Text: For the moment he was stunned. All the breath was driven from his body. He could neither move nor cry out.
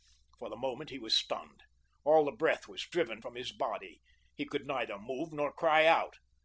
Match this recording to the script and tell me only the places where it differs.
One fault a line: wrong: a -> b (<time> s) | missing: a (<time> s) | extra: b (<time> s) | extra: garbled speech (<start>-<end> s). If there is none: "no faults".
no faults